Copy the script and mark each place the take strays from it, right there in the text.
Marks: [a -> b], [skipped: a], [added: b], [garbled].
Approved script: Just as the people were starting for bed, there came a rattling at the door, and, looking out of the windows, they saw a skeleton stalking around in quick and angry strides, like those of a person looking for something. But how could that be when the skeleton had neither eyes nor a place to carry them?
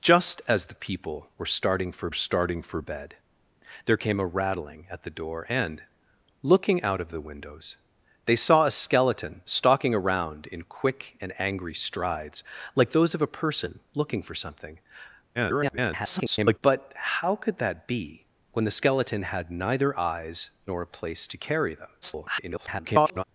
Just as the people were starting for [added: starting for] bed, there came a rattling at the door, and, looking out of the windows, they saw a skeleton stalking around in quick and angry strides, like those of a person looking for something. [garbled] But how could that be when the skeleton had neither eyes nor a place to carry them? [garbled]